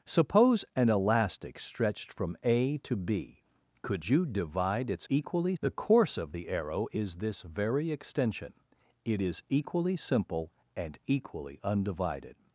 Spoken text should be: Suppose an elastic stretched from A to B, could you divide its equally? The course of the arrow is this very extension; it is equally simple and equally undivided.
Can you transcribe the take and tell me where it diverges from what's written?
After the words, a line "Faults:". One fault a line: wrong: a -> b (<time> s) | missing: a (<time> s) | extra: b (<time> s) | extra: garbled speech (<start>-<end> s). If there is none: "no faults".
Suppose an elastic stretched from A to B, could you divide its equally? The course of the arrow is this very extension; it is equally simple and equally undivided.
Faults:
no faults